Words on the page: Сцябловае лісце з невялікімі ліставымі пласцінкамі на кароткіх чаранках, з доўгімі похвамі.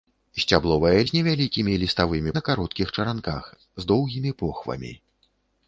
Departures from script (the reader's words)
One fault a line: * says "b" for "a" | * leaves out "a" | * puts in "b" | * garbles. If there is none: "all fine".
* leaves out "лісце"
* leaves out "пласцінкамі"